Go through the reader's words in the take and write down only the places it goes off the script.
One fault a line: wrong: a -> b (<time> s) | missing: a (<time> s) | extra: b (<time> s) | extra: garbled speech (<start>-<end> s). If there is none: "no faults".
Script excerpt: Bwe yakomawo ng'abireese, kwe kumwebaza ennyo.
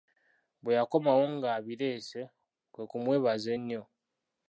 no faults